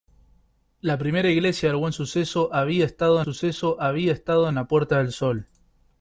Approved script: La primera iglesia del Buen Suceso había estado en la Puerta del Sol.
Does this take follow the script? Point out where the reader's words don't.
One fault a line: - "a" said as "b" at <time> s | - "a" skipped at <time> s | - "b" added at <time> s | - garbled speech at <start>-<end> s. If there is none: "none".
- "Suceso había estado" added at 3.2 s